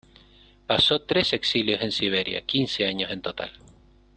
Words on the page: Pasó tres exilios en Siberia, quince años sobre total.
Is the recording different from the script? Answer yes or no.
yes